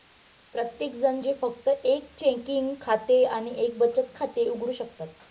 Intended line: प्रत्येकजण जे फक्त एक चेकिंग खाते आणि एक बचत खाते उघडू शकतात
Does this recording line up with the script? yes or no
yes